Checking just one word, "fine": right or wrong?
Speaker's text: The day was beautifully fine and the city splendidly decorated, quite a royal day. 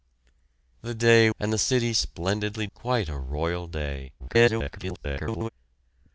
wrong